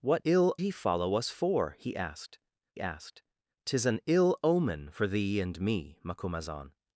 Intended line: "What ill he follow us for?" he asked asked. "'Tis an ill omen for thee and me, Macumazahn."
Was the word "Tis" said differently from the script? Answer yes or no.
no